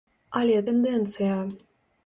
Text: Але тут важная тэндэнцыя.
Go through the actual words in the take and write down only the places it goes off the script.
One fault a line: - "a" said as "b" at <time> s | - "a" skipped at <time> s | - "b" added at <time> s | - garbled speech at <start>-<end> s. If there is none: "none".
- "тут важная" skipped at 0.6 s